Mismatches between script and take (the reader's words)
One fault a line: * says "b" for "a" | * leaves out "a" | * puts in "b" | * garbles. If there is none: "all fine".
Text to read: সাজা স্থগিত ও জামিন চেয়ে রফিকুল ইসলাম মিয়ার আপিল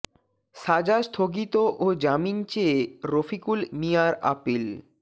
* leaves out "ইসলাম"